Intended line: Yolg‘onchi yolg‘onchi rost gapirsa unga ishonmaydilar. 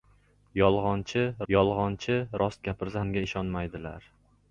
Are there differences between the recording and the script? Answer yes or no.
no